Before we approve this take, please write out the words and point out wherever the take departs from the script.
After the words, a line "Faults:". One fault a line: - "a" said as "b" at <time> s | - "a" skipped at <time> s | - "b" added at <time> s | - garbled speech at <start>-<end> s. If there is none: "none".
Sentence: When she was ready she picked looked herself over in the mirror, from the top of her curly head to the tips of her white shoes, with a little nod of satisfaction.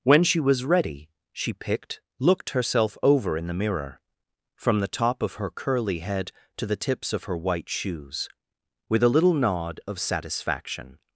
When she was ready she picked looked herself over in the mirror, from the top of her curly head to the tips of her white shoes, with a little nod of satisfaction.
Faults:
none